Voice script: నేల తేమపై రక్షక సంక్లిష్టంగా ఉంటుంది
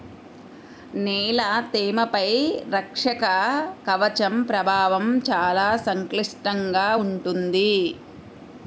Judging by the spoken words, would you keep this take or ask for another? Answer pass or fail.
fail